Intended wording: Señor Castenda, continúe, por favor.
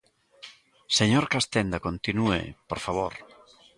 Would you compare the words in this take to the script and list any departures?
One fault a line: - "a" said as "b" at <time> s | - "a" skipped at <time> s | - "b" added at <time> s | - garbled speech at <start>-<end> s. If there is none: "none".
none